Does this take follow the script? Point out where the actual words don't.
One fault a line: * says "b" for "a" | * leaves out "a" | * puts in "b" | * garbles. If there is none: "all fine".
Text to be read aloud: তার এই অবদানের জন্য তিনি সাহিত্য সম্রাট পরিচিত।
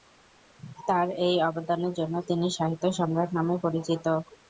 * puts in "নামে"